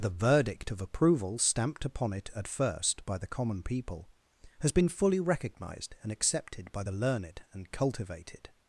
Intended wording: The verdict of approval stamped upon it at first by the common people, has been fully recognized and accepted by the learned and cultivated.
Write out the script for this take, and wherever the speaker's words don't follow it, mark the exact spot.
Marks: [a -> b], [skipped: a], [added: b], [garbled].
The verdict of approval stamped upon it at first by the common people, has been fully recognized and accepted by the learned and cultivated.